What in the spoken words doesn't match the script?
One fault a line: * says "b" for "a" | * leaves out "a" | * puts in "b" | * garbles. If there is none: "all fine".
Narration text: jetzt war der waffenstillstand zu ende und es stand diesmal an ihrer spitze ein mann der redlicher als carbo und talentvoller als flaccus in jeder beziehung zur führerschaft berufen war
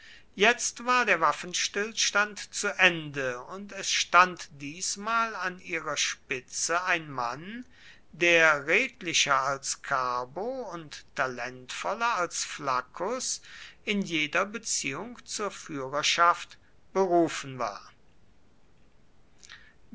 all fine